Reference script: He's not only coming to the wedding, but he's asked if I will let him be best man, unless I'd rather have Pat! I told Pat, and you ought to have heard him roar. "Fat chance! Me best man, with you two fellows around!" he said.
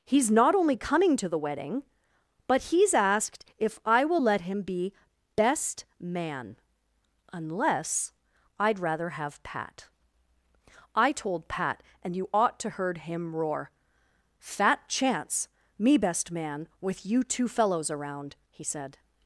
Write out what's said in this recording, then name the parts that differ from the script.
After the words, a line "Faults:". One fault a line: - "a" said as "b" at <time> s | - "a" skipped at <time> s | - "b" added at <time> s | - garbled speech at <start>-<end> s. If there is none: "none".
He's not only coming to the wedding, but he's asked if I will let him be best man, unless I'd rather have Pat! I told Pat, and you ought to heard him roar. "Fat chance! Me best man, with you two fellows around!" he said.
Faults:
- "have" skipped at 12.7 s